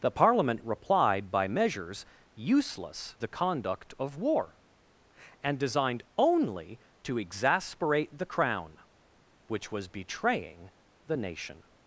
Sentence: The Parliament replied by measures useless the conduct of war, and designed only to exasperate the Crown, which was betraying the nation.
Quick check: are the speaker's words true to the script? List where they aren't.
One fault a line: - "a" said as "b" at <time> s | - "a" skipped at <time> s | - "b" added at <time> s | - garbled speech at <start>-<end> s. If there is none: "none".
none